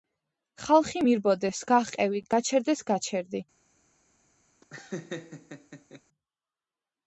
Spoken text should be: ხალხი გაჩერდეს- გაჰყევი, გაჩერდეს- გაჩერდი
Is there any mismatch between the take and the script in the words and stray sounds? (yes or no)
yes